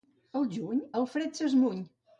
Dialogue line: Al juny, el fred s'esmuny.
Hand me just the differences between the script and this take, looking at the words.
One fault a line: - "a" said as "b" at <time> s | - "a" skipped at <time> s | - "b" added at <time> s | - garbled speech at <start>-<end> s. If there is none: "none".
none